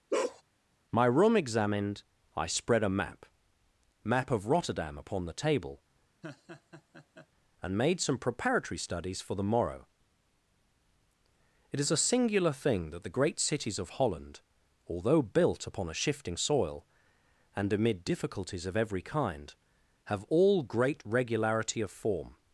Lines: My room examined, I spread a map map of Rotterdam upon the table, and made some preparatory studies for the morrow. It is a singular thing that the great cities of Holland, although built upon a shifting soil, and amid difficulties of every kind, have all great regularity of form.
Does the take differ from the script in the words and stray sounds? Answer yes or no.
yes